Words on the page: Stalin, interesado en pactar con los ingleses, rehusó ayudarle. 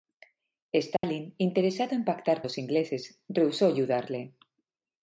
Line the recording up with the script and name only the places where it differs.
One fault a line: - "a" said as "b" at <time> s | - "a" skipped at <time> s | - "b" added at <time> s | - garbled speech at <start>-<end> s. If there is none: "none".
- "con" skipped at 2.4 s